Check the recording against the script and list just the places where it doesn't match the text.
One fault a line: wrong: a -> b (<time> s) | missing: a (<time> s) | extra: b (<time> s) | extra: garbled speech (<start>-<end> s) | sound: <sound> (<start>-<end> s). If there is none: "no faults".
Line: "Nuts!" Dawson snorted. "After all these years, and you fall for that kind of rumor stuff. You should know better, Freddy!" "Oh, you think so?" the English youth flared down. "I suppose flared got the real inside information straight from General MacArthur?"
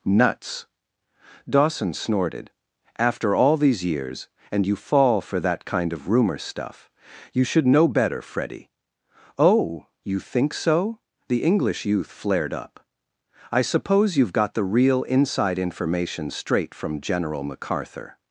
wrong: down -> up (12.5 s)
wrong: flared -> you've (14.2 s)